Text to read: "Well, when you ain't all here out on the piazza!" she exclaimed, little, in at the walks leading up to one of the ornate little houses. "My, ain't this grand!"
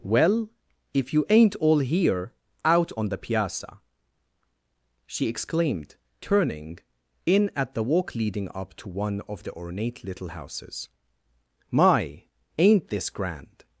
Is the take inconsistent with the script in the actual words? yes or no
yes